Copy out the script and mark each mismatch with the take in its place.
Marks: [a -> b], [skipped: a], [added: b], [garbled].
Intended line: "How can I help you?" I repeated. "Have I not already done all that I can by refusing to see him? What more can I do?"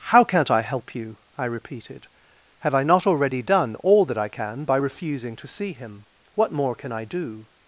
"How [can -> can't] I help you?" I repeated. "Have I not already done all that I can by refusing to see him? What more can I do?"